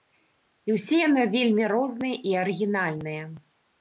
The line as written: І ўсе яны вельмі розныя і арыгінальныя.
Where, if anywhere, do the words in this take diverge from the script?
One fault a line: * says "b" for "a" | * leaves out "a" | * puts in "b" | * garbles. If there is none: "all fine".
all fine